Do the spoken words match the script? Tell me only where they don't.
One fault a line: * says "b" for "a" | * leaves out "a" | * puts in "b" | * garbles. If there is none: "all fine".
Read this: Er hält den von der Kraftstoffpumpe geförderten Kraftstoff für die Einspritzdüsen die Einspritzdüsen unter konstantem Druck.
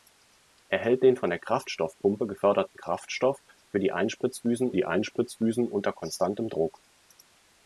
all fine